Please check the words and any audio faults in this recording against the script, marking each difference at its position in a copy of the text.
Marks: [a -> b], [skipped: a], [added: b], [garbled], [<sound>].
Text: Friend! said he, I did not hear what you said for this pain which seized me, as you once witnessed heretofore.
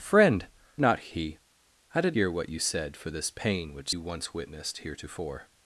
Friend! [said -> not] he, I did [skipped: not] hear what you said for this pain which [skipped: seized me, as] you once witnessed heretofore.